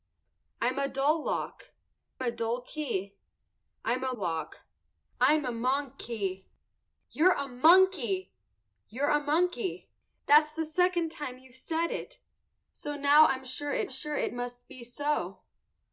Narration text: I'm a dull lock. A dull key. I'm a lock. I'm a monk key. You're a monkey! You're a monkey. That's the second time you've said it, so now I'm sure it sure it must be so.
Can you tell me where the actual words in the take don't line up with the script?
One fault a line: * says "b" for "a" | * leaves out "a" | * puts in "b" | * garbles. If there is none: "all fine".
all fine